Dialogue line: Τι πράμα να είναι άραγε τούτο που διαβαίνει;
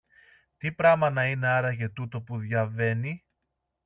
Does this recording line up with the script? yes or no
yes